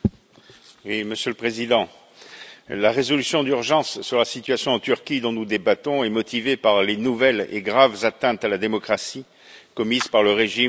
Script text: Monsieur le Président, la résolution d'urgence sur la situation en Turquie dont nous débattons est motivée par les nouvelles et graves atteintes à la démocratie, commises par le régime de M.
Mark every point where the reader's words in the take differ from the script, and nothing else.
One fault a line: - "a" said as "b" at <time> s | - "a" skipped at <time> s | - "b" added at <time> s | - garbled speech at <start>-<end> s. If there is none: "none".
none